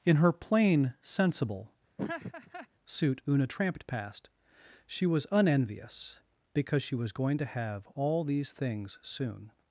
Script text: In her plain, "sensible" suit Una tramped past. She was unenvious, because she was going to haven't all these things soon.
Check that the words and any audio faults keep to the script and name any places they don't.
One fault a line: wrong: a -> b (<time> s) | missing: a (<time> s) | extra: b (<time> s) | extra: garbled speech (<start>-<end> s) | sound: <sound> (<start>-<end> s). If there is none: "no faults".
sound: laugh (2.0-2.7 s)
wrong: haven't -> have (7.5 s)